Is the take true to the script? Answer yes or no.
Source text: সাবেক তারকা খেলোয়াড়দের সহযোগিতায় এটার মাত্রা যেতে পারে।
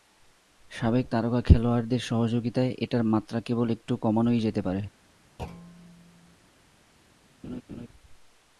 no